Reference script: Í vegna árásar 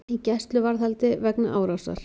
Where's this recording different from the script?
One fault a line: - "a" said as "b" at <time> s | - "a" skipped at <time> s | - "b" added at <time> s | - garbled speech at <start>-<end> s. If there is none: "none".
- "gæsluvarðhaldi" added at 0.3 s